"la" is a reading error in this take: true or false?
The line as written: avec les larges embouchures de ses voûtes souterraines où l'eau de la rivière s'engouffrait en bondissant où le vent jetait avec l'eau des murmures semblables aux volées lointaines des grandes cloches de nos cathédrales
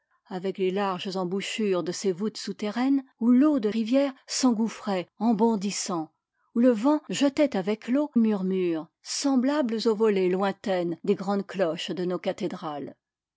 true